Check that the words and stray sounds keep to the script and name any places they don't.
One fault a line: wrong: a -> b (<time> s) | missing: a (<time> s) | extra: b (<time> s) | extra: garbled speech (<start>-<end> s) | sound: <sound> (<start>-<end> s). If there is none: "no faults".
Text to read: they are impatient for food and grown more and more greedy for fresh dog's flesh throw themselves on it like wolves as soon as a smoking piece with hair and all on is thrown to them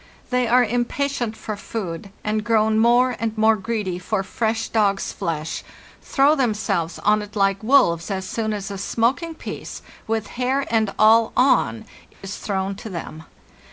sound: dropout (12.1-12.2 s)